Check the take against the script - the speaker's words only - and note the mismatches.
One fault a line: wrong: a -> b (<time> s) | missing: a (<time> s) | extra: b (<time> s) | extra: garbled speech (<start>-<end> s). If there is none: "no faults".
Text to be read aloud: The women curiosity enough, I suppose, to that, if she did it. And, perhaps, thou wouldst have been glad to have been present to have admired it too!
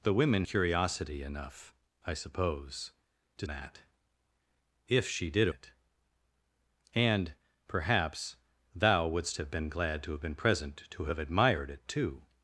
no faults